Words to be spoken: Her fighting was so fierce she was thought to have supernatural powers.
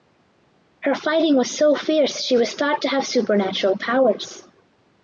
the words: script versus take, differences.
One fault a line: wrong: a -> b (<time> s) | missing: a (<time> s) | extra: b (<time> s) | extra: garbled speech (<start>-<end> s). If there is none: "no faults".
no faults